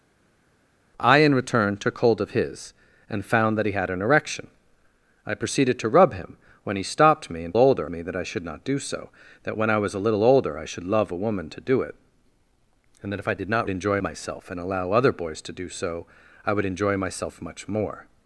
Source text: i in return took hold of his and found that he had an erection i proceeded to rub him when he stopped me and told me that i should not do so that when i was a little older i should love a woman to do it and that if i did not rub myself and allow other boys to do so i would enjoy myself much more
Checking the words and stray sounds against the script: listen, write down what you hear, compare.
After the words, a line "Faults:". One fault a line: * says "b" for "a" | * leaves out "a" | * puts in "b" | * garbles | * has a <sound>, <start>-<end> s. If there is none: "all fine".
i in return took hold of his and found that he had an erection i proceeded to rub him when he stopped me and older me that i should not do so that when i was a little older i should love a woman to do it and that if i did not enjoy myself and allow other boys to do so i would enjoy myself much more
Faults:
* says "older" for "told"
* says "enjoy" for "rub"